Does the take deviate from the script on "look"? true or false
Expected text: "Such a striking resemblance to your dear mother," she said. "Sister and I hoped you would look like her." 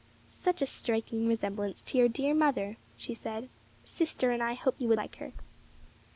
true